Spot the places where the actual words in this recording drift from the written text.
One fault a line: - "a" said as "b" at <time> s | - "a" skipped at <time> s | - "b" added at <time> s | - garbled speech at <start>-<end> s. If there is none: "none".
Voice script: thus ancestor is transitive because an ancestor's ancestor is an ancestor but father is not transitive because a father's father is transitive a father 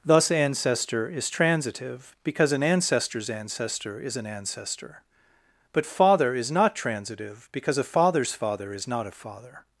- "transitive" said as "not" at 8.9 s